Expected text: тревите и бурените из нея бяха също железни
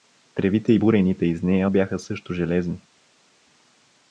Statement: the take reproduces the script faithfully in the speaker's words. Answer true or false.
true